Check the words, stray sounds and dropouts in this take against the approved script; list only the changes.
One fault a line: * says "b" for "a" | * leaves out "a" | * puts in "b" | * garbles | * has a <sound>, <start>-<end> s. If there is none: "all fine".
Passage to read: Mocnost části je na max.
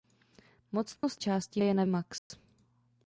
* has a dropout, 1.0-1.0 s
* has a dropout, 2.2-2.3 s